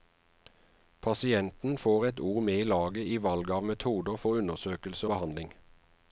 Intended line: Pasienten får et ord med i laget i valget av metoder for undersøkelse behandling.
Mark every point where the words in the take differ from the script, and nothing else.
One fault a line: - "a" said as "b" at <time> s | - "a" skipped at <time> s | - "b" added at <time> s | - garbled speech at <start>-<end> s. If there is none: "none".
none